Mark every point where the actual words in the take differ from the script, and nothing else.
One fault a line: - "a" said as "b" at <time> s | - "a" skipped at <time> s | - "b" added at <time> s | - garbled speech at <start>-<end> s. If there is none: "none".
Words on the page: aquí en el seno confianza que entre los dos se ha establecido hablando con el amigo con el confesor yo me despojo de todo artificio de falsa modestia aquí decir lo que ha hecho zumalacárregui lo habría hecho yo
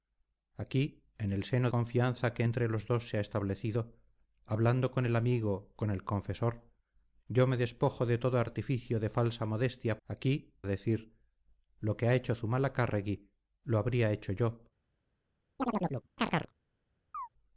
none